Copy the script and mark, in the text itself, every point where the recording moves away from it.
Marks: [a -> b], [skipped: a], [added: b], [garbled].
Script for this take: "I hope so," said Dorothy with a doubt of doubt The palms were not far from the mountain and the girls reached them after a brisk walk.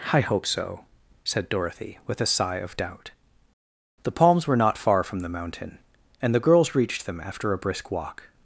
"I hope so," said Dorothy with a [doubt -> sigh] of doubt The palms were not far from the mountain and the girls reached them after a brisk walk.